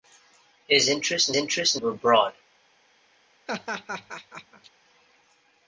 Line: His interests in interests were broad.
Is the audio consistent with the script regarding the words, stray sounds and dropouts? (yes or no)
no